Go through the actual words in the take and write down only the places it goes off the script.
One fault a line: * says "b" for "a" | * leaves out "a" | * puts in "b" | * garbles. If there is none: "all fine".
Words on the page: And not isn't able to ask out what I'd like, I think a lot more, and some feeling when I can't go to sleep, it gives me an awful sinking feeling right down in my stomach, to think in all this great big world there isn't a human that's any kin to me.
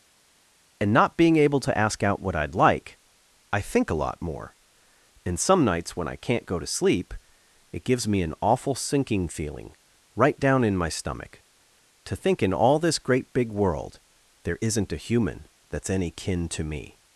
* says "being" for "isn't"
* says "nights" for "feeling"